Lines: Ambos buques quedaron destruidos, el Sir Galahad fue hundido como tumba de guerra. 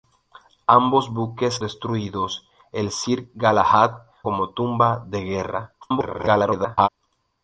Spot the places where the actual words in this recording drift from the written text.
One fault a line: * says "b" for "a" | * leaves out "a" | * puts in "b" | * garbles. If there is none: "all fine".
* leaves out "quedaron"
* leaves out "fue hundido"
* garbles